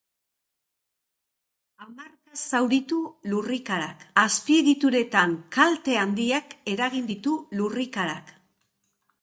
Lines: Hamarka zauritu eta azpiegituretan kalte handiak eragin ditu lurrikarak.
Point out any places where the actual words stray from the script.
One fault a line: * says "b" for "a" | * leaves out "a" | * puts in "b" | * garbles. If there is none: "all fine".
* says "lurrikarak" for "eta"